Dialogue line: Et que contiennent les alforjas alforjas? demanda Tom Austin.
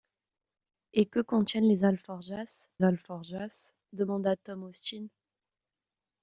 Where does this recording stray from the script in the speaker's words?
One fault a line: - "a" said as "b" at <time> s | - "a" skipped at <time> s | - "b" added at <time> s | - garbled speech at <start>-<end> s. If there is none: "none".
none